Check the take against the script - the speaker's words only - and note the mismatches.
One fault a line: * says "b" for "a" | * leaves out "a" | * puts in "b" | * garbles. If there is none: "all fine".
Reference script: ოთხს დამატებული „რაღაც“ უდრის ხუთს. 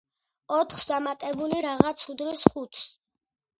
all fine